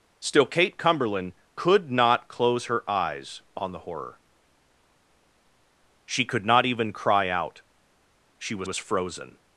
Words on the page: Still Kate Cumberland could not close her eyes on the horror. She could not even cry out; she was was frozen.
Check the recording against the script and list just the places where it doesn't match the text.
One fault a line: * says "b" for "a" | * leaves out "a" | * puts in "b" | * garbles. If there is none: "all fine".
all fine